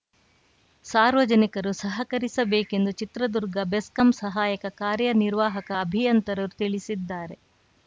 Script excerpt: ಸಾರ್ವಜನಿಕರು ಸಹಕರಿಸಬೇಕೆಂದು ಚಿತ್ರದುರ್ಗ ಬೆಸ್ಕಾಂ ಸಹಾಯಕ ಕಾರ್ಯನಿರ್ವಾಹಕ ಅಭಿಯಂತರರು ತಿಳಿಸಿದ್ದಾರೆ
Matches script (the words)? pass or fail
pass